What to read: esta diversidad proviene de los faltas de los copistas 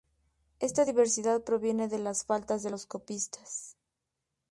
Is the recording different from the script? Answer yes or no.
yes